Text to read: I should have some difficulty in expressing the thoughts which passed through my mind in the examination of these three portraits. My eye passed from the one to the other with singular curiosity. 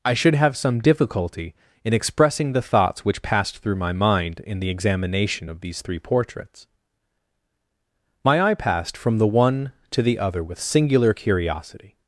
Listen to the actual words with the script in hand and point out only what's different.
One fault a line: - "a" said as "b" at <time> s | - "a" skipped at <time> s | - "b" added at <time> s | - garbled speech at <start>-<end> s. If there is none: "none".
none